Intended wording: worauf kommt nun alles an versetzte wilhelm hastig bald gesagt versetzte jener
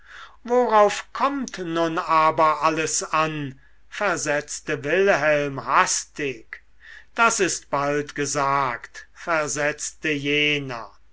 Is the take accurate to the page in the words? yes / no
no